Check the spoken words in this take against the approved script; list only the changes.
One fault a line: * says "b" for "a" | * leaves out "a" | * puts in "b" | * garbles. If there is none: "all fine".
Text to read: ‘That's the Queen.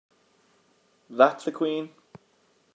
all fine